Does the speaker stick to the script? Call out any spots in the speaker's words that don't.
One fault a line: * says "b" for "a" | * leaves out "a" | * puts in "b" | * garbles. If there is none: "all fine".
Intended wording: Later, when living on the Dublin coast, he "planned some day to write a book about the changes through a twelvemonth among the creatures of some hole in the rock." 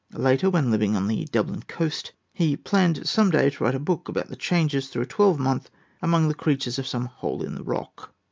all fine